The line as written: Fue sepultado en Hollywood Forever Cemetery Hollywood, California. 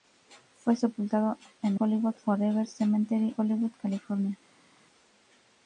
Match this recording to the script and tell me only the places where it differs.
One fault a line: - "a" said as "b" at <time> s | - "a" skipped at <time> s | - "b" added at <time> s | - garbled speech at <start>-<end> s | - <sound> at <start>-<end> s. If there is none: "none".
none